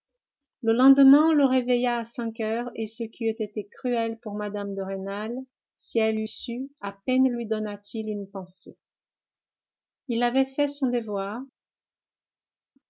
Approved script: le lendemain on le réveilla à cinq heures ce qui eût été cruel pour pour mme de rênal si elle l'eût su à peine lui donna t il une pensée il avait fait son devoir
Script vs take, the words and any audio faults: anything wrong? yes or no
yes